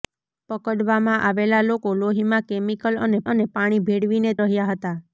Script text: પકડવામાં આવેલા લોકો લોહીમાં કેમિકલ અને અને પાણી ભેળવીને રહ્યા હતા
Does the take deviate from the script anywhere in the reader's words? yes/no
no